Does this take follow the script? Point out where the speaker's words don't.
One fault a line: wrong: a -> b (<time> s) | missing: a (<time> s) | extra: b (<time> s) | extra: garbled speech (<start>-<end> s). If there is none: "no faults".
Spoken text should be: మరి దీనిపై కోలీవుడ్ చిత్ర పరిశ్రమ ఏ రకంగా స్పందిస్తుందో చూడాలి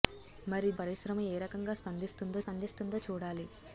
missing: దీనిపై కోలీవుడ్ చిత్ర (0.7 s)
extra: స్పందిస్తుందో (2.4 s)